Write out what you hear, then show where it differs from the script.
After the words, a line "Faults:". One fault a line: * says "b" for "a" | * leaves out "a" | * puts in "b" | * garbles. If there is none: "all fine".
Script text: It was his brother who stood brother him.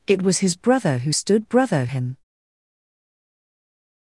It was his brother who stood brother him.
Faults:
all fine